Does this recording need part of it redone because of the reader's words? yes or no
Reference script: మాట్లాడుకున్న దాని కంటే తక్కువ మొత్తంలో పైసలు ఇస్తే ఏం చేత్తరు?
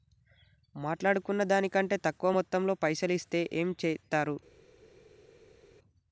no